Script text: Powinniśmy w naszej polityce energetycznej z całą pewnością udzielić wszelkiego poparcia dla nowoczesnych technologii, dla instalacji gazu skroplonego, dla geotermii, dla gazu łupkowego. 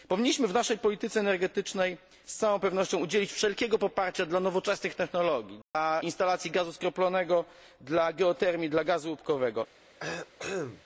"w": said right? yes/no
yes